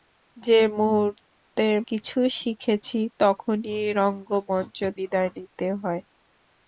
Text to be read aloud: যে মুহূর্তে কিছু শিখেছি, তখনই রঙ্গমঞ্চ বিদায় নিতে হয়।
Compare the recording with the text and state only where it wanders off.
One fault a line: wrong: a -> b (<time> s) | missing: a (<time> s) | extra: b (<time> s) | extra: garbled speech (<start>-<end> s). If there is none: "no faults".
no faults